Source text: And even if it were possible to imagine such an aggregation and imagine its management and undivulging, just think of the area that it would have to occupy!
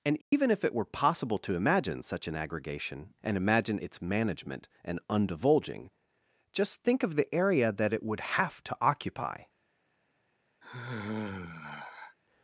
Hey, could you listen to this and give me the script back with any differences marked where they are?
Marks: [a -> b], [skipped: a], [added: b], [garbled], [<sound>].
And even [dropout] if it were possible to imagine such an aggregation and imagine its management and undivulging, just think of the area that it would have to occupy! [sigh]